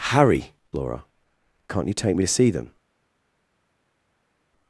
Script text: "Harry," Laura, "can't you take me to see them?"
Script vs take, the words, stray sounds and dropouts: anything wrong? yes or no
no